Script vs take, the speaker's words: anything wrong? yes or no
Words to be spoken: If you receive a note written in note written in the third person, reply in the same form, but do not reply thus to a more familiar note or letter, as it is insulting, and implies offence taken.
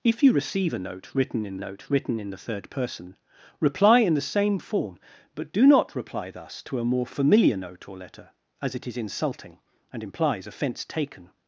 no